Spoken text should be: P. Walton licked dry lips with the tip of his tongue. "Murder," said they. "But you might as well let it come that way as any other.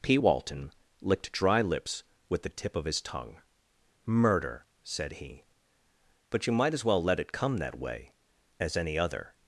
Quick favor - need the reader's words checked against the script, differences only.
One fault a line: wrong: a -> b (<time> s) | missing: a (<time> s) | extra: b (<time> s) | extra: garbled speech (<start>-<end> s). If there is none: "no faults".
wrong: they -> he (5.1 s)